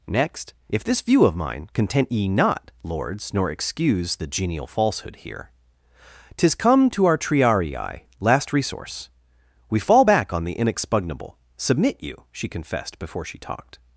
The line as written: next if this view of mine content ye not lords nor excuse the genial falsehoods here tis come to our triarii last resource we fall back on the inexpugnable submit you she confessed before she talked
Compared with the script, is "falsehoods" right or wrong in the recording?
wrong